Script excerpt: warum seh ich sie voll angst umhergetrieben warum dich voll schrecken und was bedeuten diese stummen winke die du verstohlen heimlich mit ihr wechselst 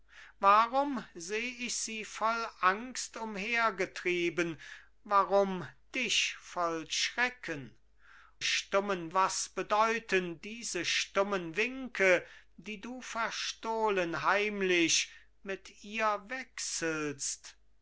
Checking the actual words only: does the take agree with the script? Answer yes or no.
no